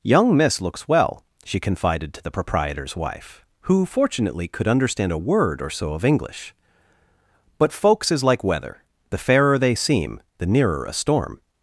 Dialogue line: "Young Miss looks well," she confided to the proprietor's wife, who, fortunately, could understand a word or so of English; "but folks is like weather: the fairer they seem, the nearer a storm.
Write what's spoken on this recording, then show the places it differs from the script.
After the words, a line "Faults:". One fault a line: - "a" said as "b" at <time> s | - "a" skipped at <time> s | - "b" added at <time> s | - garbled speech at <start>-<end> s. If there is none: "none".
"Young Miss looks well," she confided to the proprietor's wife, who, fortunately, could understand a word or so of English; "but folks is like weather: the fairer they seem, the nearer a storm.
Faults:
none